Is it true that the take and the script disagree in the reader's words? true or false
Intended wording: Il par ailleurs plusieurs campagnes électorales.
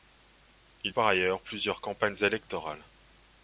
false